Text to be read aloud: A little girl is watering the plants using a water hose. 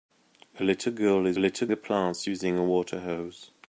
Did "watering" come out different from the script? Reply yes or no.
yes